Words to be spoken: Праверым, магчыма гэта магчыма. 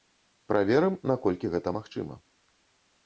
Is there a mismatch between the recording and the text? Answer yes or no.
yes